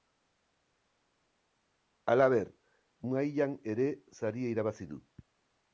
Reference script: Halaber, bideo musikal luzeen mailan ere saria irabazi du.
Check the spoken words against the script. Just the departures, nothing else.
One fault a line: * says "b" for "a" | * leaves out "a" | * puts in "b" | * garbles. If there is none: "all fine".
* leaves out "bideo musikal luzeen"